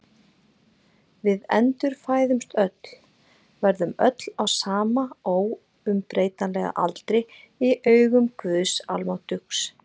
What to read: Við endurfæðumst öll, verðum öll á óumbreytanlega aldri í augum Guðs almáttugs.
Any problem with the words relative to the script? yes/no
yes